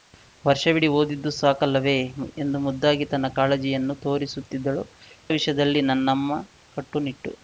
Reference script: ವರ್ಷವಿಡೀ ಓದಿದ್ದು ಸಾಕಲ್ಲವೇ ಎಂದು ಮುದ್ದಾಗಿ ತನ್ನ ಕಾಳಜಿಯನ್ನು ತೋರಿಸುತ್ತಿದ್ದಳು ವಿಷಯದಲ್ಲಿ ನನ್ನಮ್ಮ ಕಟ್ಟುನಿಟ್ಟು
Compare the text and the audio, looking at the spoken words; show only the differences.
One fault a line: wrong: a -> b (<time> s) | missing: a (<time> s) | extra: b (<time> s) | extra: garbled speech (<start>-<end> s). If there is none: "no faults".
no faults